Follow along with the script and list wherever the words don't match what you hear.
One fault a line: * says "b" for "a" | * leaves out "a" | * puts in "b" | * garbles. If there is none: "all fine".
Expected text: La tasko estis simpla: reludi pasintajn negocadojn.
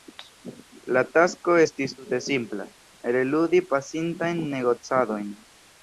* puts in "tute"